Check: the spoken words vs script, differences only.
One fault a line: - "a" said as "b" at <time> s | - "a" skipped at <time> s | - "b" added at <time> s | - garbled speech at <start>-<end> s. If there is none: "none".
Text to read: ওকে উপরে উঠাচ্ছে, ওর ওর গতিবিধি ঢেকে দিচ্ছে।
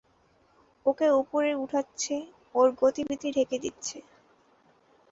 - "ওর" skipped at 2.7 s